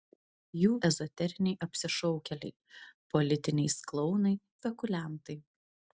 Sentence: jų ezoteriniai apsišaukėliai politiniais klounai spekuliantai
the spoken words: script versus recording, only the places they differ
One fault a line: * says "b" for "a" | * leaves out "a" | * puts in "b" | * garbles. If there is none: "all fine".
all fine